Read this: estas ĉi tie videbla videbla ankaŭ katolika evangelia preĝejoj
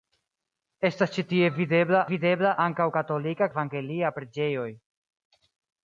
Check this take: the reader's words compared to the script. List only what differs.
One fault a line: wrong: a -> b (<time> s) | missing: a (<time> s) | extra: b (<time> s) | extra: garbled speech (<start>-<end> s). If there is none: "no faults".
no faults